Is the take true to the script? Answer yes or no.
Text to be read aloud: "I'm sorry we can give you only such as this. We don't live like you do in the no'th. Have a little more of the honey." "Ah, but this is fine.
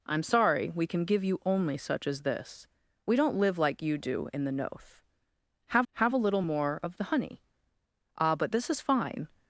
no